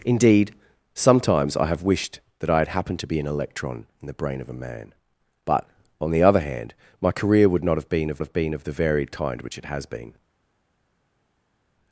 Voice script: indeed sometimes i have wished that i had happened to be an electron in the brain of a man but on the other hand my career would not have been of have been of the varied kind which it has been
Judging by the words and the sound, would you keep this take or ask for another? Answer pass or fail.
pass